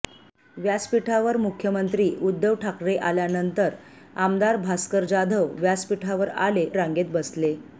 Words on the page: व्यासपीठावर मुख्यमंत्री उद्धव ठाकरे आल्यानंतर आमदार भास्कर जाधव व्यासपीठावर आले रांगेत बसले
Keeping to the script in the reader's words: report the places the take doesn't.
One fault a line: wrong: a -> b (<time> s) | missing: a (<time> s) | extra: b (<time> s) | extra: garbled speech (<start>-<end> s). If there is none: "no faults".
no faults